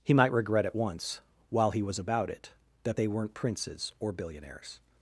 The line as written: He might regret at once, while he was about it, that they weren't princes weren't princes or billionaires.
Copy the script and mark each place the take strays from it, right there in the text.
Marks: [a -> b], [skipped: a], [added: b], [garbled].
He might regret at once, while he was about it, that they weren't princes [skipped: weren't princes] or billionaires.